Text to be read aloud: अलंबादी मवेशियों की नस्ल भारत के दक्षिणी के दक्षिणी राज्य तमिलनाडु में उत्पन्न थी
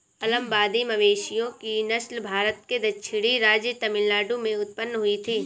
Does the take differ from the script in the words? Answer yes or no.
yes